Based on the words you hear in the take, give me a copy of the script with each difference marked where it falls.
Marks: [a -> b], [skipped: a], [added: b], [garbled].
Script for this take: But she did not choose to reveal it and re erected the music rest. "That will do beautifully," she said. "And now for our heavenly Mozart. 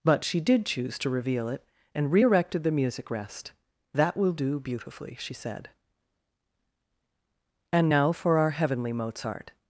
But she did [skipped: not] choose to reveal it and re erected the music rest. "That will do beautifully," she said. "And now for our heavenly Mozart.